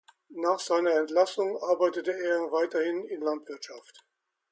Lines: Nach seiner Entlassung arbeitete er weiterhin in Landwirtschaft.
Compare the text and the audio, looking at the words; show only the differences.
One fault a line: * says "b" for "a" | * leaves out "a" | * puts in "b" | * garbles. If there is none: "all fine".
all fine